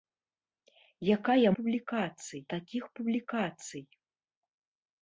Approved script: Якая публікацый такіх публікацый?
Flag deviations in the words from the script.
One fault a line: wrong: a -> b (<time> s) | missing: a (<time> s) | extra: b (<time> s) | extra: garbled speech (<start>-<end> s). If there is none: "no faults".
no faults